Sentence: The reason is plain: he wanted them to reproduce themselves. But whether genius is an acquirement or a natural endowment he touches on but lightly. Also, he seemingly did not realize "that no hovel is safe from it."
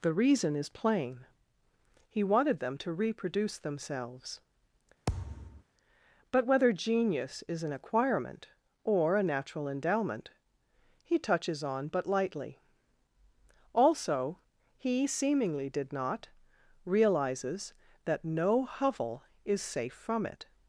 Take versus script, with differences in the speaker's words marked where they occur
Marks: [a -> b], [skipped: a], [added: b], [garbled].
The reason is plain: he wanted them to reproduce themselves. But whether genius is an acquirement or a natural endowment he touches on but lightly. Also, he seemingly did not [realize -> realizes] "that no hovel is safe from it."